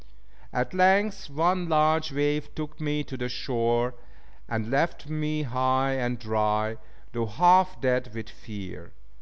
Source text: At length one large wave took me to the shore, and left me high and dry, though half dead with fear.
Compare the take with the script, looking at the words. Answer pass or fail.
pass